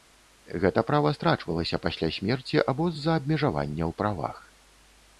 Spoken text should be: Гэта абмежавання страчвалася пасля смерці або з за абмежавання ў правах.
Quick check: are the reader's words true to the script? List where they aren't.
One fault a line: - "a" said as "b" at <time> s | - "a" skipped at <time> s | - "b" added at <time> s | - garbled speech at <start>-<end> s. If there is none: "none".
- "абмежавання" said as "права" at 0.9 s